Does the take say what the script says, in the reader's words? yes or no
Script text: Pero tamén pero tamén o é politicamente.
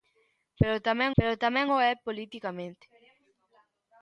yes